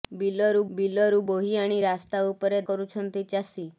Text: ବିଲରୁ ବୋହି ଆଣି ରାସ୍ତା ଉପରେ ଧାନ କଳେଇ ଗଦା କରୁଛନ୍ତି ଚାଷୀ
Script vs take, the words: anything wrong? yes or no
yes